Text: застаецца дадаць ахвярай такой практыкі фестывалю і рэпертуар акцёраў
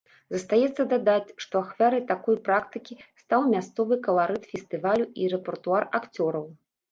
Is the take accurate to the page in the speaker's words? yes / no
no